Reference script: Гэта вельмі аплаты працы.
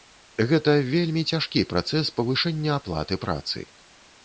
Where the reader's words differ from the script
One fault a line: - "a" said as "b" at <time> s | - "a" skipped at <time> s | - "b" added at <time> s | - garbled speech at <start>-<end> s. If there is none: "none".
- "цяжкі працэс павышэння" added at 1.4 s